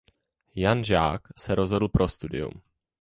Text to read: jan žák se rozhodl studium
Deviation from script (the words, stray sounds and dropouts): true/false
true